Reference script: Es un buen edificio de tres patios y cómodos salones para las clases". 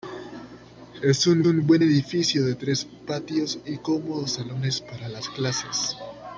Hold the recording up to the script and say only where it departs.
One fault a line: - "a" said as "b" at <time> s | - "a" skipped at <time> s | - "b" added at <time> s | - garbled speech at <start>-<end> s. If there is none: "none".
- "un" added at 1.4 s